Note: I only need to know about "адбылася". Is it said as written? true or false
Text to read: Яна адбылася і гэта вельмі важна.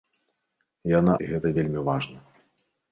false